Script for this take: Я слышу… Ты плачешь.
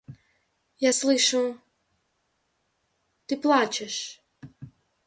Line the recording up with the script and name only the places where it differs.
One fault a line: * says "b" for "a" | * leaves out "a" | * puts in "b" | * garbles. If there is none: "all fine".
all fine